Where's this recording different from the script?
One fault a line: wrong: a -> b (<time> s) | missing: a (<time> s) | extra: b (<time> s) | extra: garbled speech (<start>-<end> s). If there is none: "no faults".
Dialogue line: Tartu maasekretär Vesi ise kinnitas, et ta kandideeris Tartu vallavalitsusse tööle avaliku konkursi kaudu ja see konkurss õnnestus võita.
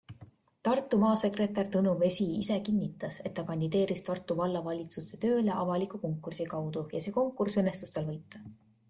extra: Tõnu (1.8 s)
extra: tal (8.0 s)